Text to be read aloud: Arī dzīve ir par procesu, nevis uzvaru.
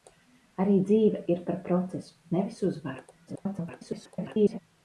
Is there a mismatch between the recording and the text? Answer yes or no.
yes